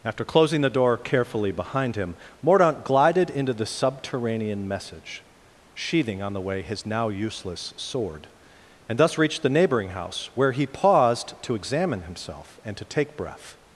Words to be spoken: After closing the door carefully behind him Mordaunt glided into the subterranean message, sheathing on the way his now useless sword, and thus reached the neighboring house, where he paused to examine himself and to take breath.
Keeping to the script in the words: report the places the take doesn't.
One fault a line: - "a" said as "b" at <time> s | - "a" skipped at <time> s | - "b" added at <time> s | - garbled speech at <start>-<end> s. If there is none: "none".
none